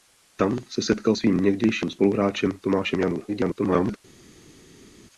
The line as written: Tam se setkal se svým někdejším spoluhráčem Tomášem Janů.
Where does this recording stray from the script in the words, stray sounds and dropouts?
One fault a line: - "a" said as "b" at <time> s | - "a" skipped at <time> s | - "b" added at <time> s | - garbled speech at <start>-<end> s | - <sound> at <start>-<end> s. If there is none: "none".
- "se" skipped at 1.1 s
- garbled speech at 3.3-4.0 s